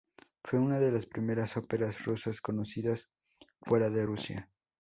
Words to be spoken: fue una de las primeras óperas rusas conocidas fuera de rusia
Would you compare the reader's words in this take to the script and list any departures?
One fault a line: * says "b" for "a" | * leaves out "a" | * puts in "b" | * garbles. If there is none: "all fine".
all fine